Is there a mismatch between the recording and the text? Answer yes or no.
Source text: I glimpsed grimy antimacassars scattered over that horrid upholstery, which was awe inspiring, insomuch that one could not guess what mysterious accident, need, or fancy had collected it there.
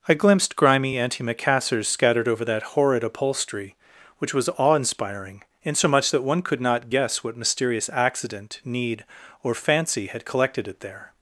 no